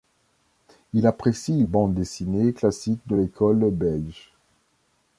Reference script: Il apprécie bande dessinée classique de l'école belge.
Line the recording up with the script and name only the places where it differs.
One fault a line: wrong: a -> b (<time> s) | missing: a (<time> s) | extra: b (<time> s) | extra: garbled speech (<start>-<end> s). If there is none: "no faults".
no faults